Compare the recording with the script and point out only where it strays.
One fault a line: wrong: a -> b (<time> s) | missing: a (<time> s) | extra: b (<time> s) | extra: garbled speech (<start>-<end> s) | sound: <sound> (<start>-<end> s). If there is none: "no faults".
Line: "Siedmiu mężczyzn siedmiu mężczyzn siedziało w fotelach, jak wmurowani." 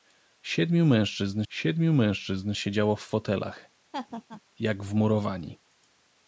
sound: laugh (3.9-4.4 s)